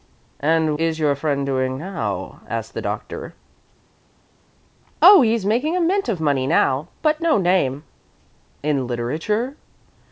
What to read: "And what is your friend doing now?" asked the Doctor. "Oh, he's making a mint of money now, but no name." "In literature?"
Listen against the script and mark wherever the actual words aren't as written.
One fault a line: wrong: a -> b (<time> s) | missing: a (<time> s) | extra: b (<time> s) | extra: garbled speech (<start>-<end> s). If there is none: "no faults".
missing: what (0.8 s)